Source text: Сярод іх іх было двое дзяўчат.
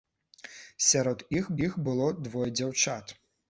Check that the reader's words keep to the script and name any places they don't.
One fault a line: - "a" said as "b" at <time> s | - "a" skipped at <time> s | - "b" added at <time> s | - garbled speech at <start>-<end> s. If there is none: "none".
none